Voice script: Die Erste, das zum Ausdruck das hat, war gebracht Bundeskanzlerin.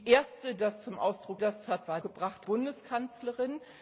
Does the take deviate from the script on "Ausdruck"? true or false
false